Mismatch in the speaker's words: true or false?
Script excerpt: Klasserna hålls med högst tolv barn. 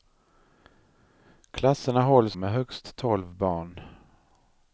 false